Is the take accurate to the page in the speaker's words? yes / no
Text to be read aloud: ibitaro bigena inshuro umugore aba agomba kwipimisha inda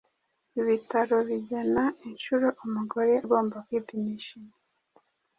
no